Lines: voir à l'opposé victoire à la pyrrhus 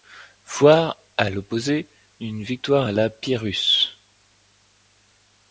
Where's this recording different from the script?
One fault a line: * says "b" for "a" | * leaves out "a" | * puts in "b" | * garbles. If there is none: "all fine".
* puts in "une"